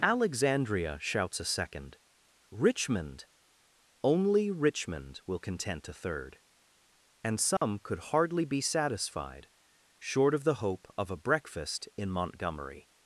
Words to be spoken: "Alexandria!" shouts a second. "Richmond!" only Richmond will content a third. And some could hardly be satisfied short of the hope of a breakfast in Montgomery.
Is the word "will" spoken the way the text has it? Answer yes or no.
yes